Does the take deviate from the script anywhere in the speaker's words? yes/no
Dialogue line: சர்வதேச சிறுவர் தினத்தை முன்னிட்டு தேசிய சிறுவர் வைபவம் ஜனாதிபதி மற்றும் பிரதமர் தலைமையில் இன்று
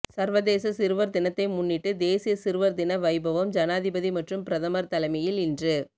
yes